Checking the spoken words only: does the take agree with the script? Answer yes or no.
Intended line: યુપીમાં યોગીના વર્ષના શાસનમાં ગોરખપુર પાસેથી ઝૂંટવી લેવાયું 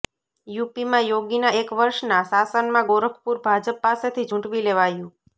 no